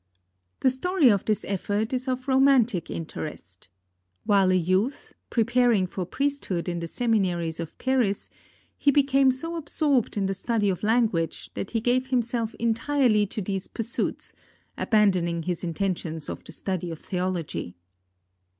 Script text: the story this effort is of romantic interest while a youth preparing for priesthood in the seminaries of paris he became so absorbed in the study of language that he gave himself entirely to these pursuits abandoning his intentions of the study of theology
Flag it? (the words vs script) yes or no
yes